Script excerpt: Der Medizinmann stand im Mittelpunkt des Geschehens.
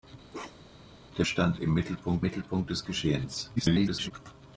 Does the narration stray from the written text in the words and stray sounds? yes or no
yes